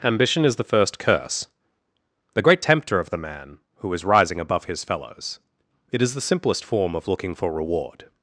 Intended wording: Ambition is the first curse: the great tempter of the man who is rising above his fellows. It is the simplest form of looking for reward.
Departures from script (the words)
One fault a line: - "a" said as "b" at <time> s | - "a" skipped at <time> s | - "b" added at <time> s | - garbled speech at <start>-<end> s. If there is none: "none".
none